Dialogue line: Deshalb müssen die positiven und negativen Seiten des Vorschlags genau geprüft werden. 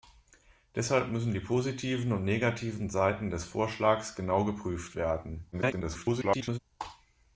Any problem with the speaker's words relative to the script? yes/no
yes